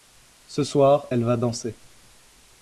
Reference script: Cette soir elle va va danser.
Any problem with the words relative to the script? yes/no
yes